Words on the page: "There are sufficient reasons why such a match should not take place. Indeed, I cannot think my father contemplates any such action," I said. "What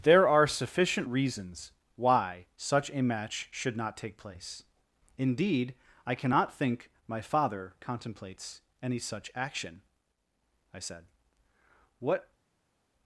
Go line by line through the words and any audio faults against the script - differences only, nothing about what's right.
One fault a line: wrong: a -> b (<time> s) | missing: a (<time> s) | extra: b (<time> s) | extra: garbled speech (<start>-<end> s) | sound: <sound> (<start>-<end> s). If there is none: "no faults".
no faults